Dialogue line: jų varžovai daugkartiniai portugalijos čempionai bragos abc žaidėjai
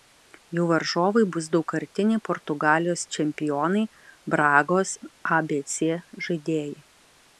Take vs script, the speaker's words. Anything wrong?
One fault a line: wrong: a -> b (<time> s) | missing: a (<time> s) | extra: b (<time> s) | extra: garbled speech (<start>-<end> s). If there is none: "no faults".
extra: bus (1.4 s)